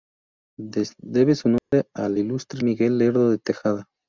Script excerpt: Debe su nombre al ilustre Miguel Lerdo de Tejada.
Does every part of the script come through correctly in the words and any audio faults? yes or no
no